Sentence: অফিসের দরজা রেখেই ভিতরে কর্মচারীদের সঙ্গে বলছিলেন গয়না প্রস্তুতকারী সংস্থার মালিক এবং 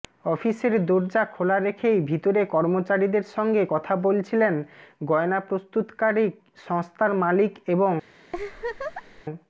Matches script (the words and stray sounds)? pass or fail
fail